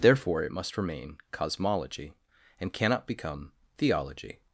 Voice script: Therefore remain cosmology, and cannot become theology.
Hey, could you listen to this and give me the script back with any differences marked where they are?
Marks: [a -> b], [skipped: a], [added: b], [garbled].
Therefore [added: it must] remain cosmology, and cannot become theology.